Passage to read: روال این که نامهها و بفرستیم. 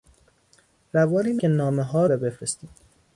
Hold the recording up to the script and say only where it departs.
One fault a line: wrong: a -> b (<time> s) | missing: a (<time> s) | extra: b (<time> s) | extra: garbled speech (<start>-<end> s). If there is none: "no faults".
no faults